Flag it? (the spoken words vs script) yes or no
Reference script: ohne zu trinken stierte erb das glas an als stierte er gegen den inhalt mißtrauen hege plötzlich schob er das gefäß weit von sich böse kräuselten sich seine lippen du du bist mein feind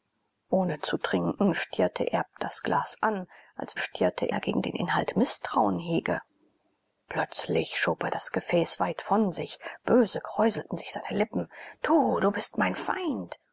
no